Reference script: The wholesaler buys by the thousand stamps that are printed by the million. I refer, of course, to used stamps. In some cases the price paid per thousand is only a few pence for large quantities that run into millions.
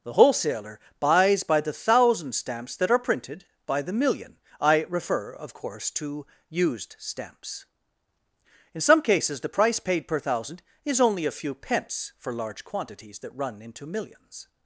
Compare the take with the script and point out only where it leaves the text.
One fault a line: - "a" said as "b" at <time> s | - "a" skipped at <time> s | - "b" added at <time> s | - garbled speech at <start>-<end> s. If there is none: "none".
none